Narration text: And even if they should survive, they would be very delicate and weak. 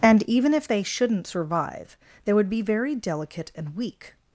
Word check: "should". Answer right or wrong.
wrong